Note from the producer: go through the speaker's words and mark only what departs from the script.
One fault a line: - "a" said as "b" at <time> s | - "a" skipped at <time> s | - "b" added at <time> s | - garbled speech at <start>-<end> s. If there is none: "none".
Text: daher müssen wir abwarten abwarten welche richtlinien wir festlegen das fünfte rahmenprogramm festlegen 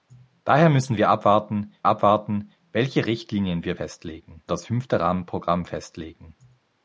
none